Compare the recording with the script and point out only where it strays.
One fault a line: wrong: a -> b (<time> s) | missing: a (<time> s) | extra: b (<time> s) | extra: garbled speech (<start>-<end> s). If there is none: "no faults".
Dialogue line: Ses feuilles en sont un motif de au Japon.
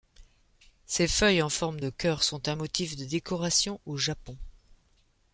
extra: forme de cœur (1.5 s)
extra: décoration (3.0 s)